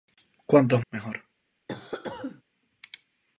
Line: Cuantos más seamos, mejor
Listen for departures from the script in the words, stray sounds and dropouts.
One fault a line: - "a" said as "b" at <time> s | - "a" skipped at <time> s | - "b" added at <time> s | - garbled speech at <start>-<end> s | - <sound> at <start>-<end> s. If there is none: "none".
- "más seamos" skipped at 0.8 s
- cough at 1.7-2.4 s